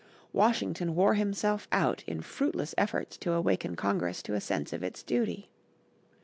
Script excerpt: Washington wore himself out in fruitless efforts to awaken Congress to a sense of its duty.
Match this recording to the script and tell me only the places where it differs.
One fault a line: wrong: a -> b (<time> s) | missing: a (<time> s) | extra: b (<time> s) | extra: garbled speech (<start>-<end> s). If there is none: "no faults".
no faults